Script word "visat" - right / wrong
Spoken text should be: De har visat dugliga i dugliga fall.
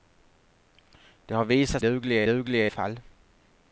right